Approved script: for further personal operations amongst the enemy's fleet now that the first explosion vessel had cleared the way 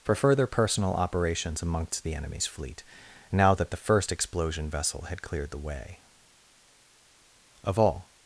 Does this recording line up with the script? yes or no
no